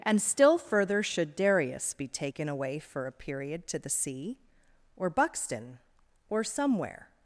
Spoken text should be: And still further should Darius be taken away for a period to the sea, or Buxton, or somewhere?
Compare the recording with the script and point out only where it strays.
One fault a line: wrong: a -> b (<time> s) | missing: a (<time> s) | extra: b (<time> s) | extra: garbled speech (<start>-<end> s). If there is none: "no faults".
no faults